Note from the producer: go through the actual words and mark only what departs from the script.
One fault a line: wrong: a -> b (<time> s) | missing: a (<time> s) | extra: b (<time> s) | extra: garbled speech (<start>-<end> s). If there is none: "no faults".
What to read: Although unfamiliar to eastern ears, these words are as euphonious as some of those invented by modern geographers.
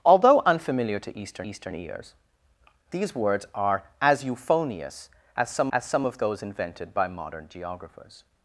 extra: eastern (1.5 s)
extra: as some (5.7 s)